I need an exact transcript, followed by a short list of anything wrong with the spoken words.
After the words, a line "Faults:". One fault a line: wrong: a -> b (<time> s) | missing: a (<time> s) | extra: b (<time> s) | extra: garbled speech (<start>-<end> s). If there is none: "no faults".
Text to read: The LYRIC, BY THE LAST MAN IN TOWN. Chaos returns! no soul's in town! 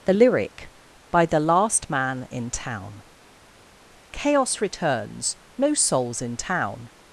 The LYRIC, BY THE LAST MAN IN TOWN. Chaos returns! no soul's in town!
Faults:
no faults